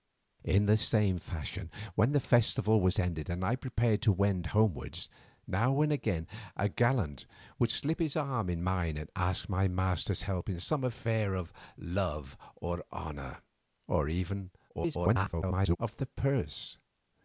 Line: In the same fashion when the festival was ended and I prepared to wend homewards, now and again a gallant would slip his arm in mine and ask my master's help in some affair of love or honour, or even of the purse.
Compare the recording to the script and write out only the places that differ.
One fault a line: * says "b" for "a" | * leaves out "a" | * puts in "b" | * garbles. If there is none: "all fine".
* garbles